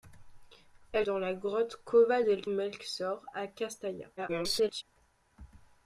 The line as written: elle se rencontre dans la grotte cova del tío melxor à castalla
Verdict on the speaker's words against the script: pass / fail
fail